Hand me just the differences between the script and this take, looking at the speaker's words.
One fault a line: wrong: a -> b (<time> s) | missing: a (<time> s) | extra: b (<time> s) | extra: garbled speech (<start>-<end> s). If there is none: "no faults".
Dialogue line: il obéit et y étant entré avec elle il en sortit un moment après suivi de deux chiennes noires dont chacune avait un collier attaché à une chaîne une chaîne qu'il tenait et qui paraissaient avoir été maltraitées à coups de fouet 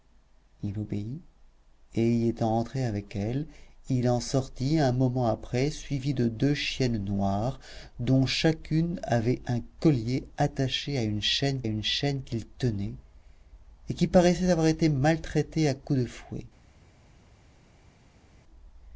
no faults